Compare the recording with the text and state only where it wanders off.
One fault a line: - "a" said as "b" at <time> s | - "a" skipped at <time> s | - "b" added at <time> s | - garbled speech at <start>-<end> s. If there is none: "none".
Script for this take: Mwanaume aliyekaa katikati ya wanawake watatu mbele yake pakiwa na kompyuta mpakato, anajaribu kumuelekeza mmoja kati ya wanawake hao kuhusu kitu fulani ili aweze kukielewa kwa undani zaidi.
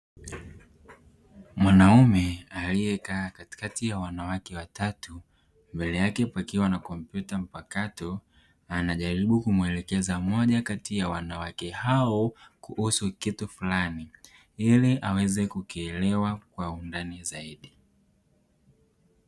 none